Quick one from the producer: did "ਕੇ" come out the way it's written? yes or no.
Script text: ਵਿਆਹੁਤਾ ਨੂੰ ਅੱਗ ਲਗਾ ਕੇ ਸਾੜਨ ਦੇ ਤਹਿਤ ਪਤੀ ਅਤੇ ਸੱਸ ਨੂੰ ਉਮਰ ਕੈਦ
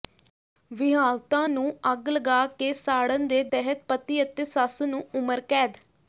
yes